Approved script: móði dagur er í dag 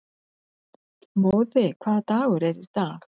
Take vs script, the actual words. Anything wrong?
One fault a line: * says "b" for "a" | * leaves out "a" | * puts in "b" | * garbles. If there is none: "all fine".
* puts in "hvaða"